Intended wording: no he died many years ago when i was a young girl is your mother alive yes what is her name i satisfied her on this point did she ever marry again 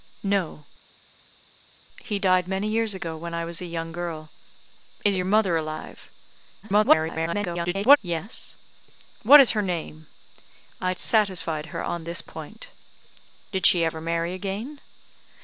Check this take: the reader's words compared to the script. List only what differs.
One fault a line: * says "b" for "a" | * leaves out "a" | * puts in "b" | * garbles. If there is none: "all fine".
* garbles